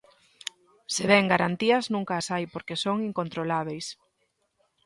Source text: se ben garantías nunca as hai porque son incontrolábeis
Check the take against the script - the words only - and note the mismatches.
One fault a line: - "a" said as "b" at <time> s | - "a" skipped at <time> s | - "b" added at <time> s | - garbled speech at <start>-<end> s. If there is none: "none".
none